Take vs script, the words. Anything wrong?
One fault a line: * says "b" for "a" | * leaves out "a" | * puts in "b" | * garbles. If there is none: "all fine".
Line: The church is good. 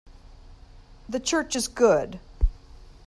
all fine